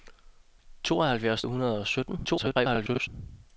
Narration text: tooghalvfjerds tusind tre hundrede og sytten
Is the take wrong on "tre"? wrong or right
wrong